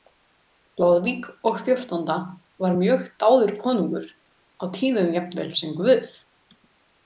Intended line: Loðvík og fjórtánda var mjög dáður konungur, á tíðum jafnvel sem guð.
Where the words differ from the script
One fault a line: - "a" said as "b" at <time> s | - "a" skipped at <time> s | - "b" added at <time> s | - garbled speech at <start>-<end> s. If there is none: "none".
none